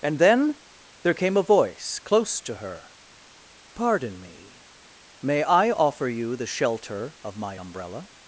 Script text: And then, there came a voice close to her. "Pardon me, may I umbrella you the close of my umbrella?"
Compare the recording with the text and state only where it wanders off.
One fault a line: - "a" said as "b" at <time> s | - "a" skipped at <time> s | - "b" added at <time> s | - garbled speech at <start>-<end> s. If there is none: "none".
- "umbrella" said as "offer" at 5.7 s
- "close" said as "shelter" at 6.5 s